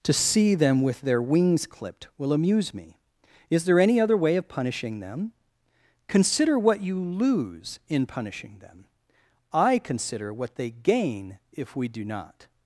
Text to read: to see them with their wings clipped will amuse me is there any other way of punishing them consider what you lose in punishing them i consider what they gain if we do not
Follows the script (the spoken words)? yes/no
yes